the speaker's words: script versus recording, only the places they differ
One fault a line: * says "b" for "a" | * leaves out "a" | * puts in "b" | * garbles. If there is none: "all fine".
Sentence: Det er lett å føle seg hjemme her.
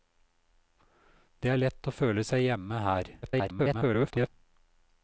* garbles